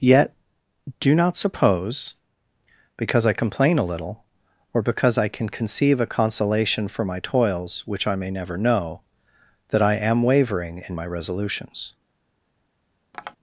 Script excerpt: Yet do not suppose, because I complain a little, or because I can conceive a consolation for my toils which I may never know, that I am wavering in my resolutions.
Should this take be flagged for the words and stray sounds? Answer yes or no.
yes